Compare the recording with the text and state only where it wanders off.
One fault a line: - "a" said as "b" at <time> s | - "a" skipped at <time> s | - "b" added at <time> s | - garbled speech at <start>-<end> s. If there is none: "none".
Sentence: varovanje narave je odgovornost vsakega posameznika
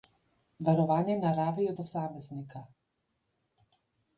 - "odgovornost vsakega" skipped at 1.7 s